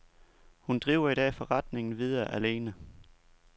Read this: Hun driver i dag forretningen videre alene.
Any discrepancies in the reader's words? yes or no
no